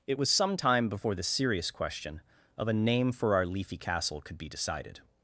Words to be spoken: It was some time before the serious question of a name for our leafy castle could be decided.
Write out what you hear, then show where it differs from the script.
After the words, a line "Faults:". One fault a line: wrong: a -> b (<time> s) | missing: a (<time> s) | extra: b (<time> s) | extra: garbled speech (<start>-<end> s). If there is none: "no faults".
It was some time before the serious question of a name for our leafy castle could be decided.
Faults:
no faults